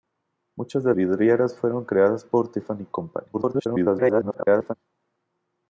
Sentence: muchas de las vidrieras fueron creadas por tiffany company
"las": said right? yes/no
no